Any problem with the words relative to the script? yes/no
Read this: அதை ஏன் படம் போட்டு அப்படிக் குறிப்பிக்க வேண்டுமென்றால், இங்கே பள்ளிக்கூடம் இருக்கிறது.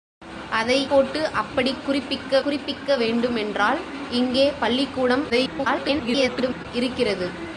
yes